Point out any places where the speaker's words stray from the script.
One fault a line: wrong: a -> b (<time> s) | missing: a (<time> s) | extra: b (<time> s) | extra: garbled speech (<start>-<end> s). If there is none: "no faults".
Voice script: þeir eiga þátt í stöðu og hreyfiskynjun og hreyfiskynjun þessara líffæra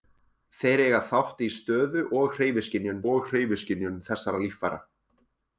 no faults